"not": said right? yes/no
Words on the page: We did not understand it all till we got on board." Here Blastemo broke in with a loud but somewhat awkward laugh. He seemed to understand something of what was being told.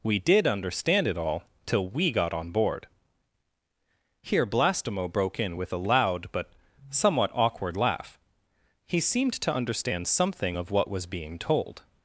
no